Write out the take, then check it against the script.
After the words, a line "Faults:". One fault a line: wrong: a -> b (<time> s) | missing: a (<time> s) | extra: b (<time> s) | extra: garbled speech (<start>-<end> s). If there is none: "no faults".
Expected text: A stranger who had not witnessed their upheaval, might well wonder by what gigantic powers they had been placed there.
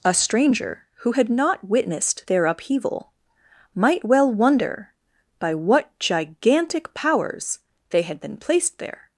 A stranger who had not witnessed their upheaval, might well wonder by what gigantic powers they had been placed there.
Faults:
no faults